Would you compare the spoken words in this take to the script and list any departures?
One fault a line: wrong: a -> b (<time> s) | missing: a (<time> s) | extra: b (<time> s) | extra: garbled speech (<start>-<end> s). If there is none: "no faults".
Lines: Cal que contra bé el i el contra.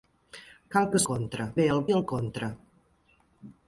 no faults